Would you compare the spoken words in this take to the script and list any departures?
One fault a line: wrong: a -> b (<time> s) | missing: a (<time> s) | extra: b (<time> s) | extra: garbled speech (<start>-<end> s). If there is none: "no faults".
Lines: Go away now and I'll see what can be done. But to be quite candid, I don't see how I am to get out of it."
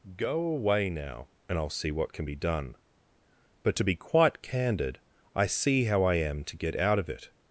missing: don't (5.5 s)